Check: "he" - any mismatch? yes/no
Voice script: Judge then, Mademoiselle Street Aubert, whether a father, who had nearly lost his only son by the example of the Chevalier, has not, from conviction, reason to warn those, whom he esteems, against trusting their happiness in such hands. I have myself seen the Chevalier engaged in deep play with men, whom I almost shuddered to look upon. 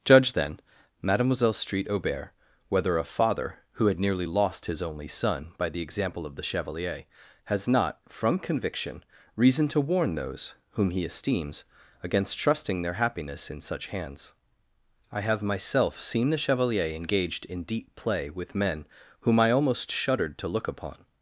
no